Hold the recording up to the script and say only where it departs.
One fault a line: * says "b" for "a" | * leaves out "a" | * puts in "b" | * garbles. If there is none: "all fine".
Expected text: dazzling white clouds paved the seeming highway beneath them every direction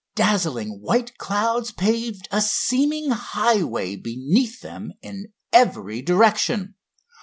* says "a" for "the"
* puts in "in"